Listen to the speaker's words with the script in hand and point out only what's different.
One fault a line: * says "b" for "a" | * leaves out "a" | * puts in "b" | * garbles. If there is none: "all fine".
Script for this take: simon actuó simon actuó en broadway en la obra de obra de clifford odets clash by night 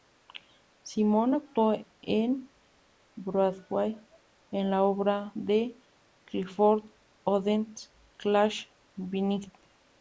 * leaves out "simon actuó"
* leaves out "obra de"